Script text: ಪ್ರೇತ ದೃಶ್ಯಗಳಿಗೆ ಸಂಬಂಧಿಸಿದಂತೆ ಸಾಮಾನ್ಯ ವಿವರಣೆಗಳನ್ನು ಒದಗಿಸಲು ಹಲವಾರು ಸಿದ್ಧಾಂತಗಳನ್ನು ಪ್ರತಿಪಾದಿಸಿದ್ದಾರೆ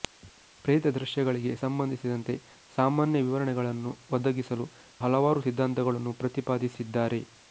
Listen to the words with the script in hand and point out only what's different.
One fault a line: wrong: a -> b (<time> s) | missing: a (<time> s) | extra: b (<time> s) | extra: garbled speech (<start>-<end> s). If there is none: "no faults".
no faults